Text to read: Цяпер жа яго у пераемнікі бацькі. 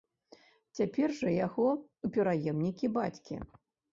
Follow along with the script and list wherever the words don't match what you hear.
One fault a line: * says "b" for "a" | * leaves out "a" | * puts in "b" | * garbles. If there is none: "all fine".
all fine